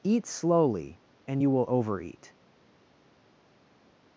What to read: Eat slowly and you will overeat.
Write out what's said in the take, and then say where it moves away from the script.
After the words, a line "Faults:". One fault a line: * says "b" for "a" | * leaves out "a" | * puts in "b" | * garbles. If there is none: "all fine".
Eat slowly and you will overeat.
Faults:
all fine